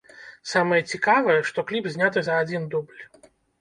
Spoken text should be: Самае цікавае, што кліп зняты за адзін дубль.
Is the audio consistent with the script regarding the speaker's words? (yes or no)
yes